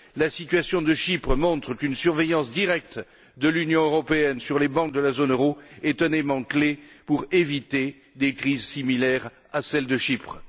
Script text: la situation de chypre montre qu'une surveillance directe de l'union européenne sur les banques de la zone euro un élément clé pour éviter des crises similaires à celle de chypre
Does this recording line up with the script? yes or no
no